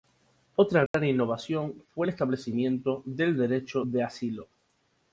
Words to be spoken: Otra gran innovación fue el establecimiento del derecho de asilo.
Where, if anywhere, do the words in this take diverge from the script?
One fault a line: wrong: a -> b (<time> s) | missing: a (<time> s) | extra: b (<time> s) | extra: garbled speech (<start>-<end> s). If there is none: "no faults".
no faults